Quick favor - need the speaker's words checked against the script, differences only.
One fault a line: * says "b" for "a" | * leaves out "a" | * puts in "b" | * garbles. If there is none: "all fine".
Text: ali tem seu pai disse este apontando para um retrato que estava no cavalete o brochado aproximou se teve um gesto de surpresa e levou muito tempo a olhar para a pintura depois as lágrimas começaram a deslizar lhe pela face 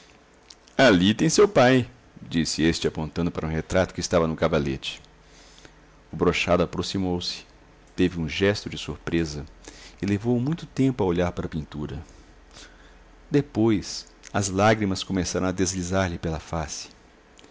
all fine